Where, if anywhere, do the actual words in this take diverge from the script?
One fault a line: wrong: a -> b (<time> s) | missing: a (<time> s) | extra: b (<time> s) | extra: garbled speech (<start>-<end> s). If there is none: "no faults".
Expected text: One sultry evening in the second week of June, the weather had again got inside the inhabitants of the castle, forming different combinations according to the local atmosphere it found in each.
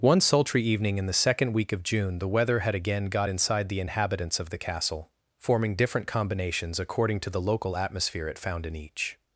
no faults